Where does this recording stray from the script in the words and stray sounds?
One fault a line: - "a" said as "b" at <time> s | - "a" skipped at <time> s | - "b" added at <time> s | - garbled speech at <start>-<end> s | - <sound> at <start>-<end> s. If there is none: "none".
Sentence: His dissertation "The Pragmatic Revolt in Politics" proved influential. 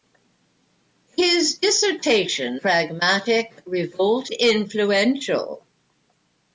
- "The" skipped at 2.6 s
- "in Politics proved" skipped at 4.3 s